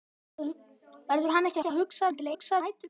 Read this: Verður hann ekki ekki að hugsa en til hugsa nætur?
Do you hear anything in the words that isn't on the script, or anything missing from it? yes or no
no